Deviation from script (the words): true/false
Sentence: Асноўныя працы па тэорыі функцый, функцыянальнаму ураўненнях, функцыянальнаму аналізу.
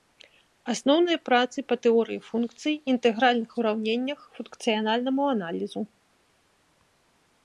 true